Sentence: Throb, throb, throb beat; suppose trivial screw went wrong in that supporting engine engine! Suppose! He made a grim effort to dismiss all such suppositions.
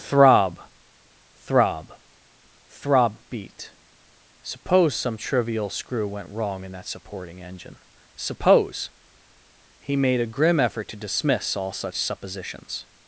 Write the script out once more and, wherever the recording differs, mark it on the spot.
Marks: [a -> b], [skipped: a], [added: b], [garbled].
Throb, throb, throb beat; suppose [added: some] trivial screw went wrong in that supporting engine [skipped: engine!] Suppose! He made a grim effort to dismiss all such suppositions.